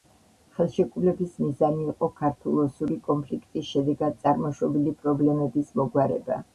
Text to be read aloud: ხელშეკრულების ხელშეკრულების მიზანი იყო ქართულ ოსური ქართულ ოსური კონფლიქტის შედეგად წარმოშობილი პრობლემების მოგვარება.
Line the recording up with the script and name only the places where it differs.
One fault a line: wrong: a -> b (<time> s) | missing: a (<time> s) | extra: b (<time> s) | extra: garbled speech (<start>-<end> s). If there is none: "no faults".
missing: ხელშეკრულების (1.4 s)
missing: ქართულ ოსური (3.0 s)